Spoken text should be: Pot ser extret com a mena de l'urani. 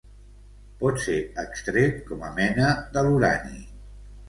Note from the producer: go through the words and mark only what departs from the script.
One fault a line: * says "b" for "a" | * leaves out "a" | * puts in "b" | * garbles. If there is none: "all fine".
all fine